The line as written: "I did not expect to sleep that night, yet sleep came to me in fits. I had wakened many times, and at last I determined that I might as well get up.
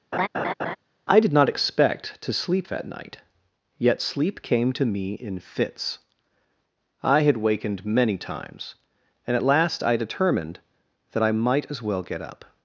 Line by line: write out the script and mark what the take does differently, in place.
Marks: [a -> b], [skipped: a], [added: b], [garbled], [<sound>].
[laugh] "I did not expect to sleep that night, yet sleep came to me in fits. I had wakened many times, and at last I determined that I might as well get up.